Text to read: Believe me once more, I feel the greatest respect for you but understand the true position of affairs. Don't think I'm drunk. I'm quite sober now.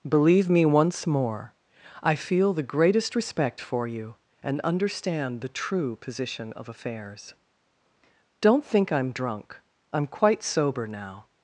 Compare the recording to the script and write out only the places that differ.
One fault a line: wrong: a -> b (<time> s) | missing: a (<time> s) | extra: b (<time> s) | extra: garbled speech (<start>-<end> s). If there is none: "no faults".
wrong: but -> and (4.4 s)